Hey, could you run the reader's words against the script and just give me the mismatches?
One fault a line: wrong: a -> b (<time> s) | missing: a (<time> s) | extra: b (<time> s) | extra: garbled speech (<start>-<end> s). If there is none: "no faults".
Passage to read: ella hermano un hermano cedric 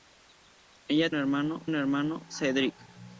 no faults